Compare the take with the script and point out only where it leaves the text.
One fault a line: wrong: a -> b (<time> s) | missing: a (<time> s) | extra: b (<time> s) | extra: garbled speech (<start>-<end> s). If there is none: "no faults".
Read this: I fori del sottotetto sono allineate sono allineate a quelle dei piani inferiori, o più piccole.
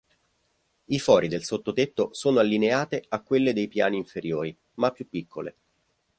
missing: sono allineate (3.0 s)
wrong: o -> ma (4.7 s)